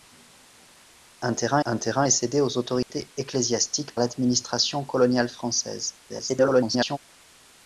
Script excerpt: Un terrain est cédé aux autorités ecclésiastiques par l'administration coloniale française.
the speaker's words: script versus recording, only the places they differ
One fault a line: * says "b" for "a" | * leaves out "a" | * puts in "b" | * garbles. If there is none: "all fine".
* puts in "un terrain"
* leaves out "par"
* garbles